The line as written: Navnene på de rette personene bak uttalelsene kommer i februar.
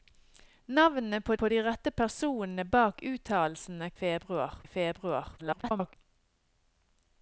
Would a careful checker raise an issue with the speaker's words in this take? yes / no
yes